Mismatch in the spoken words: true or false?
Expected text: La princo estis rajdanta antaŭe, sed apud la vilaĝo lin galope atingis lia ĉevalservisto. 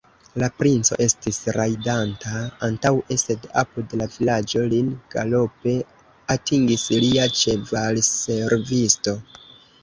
false